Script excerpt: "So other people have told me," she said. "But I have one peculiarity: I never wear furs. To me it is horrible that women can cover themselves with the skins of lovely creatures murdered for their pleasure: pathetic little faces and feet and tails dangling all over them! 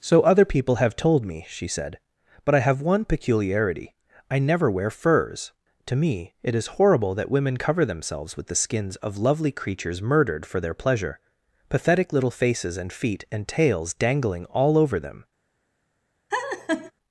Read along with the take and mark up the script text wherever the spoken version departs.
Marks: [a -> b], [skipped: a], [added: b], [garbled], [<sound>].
"So other people have told me," she said. "But I have one peculiarity: I never wear furs. To me it is horrible that women [skipped: can] cover themselves with the skins of lovely creatures murdered for their pleasure: pathetic little faces and feet and tails dangling all over them! [laugh]